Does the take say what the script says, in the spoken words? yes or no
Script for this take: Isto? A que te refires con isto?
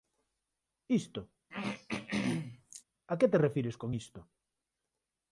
yes